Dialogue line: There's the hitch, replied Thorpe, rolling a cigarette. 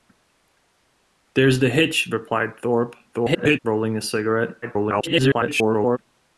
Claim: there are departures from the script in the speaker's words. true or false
true